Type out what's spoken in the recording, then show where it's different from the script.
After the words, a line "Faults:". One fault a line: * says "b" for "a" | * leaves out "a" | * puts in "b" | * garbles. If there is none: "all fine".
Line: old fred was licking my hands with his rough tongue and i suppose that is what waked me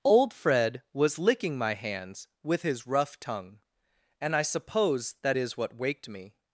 old fred was licking my hands with his rough tongue and i suppose that is what waked me
Faults:
all fine